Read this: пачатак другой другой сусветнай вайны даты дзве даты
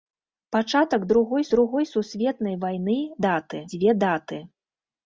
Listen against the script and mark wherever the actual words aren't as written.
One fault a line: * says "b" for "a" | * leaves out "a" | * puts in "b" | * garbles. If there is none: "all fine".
all fine